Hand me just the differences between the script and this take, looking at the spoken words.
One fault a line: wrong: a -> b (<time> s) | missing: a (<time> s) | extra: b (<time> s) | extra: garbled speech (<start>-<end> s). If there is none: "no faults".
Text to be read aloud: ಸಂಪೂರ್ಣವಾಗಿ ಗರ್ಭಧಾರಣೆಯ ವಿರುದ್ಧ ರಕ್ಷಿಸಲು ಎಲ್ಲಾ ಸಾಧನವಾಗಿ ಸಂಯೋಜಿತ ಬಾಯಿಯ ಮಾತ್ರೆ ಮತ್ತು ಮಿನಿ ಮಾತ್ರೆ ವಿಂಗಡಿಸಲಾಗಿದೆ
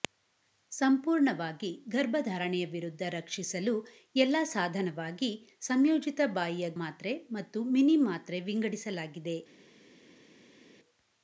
no faults